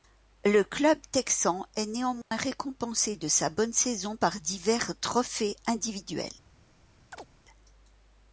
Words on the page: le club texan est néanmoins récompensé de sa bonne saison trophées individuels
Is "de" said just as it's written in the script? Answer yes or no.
yes